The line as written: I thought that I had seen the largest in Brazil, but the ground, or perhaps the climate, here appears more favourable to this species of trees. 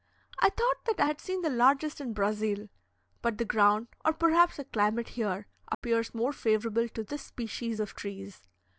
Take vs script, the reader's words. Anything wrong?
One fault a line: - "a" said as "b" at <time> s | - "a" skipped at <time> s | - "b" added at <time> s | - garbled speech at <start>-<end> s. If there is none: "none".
none